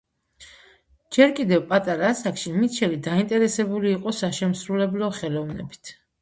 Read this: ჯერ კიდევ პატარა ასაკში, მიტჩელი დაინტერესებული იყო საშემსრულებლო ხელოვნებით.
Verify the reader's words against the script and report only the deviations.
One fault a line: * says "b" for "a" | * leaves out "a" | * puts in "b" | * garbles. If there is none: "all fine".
all fine